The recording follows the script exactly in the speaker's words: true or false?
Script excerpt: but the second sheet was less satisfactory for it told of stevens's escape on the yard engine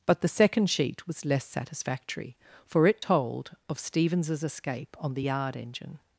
true